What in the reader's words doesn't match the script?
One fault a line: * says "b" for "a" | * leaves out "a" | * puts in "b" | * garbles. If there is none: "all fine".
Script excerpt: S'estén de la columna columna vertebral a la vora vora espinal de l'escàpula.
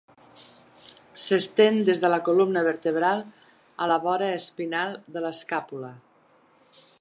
* puts in "des"
* leaves out "columna"
* leaves out "vora"